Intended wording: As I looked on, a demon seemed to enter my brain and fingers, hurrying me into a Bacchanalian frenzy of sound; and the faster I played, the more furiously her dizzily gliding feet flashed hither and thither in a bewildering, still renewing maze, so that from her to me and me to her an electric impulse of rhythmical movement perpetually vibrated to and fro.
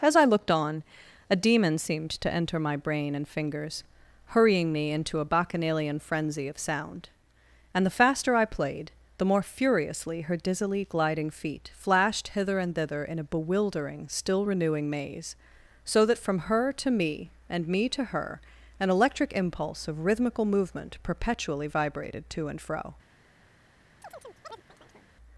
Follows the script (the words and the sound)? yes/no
no